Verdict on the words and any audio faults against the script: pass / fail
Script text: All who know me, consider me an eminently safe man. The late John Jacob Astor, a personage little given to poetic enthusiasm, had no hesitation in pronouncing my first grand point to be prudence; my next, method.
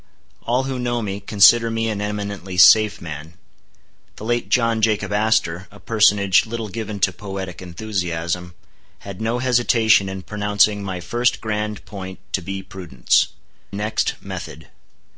fail